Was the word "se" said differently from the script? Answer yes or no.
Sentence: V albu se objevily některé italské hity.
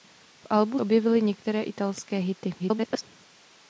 yes